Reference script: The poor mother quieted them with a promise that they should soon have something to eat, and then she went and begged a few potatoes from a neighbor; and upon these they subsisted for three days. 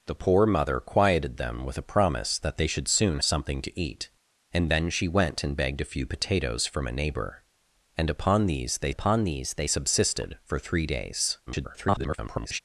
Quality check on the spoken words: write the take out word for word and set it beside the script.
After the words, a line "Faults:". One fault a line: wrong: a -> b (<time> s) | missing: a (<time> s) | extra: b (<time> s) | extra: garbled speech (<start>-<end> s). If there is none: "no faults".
The poor mother quieted them with a promise that they should soon something to eat, and then she went and begged a few potatoes from a neighbor; and upon these they upon these they subsisted for three days. [garbled]
Faults:
missing: have (3.2 s)
extra: upon these they (8.9 s)
extra: garbled speech (11.5-12.6 s)